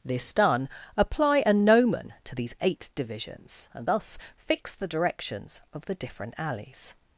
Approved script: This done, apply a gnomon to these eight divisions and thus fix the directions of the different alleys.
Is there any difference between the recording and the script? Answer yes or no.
no